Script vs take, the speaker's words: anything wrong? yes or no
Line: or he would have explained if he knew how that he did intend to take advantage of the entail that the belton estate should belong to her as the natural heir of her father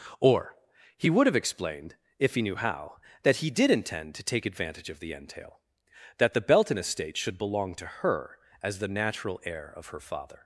no